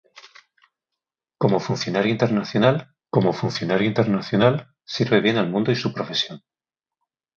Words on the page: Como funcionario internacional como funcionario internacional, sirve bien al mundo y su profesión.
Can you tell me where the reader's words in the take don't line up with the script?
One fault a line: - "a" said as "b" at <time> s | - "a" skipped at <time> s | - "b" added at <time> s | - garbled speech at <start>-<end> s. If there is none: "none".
none